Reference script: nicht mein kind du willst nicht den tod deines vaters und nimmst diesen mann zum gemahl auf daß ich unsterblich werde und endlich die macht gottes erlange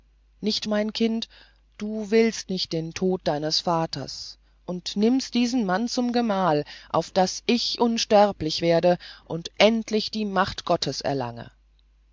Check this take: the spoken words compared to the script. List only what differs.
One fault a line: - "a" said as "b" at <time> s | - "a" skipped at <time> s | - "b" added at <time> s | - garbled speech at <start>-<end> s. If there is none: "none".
none